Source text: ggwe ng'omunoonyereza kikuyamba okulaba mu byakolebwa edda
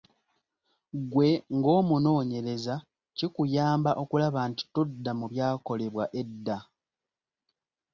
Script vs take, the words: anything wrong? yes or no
yes